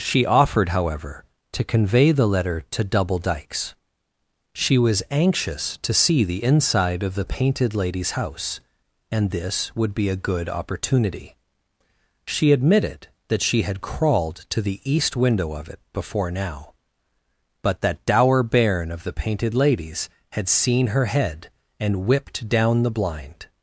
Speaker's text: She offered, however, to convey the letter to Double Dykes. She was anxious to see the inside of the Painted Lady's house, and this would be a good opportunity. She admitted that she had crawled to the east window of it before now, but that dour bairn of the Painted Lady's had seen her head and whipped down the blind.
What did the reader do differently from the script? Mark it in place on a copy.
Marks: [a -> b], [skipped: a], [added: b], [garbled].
She offered, however, to convey the letter to Double Dykes. She was anxious to see the inside of the Painted Lady's house, and this would be a good opportunity. She admitted that she had crawled to the east window of it before now, but that dour bairn of the Painted Lady's had seen her head and whipped down the blind.